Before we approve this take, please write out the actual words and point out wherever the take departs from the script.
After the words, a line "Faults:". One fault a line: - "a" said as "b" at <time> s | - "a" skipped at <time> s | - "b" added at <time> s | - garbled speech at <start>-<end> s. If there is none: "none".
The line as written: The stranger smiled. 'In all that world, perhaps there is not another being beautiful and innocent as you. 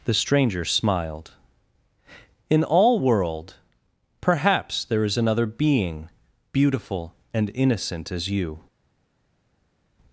The stranger smiled. 'In all world, perhaps there is another being beautiful and innocent as you.
Faults:
- "that" skipped at 3.0 s
- "not" skipped at 5.2 s